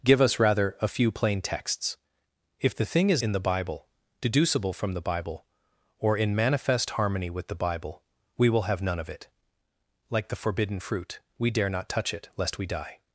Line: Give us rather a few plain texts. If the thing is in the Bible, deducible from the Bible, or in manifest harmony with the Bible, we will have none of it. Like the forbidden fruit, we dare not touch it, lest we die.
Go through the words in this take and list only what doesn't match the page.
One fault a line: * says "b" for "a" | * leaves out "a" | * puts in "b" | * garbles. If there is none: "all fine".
all fine